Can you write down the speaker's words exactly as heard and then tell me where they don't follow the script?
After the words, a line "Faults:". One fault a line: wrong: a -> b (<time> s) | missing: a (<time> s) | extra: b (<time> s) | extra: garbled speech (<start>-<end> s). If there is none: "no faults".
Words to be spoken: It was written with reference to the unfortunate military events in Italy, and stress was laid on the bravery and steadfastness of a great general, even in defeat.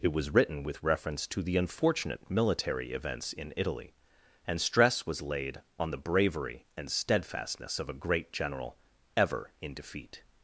It was written with reference to the unfortunate military events in Italy, and stress was laid on the bravery and steadfastness of a great general, ever in defeat.
Faults:
wrong: even -> ever (9.2 s)